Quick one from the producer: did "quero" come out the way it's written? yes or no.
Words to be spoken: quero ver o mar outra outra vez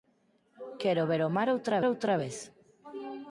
yes